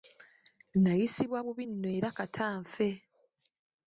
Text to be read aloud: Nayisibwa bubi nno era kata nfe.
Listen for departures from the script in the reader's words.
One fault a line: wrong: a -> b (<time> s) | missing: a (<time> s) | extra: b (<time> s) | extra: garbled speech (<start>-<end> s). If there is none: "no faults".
no faults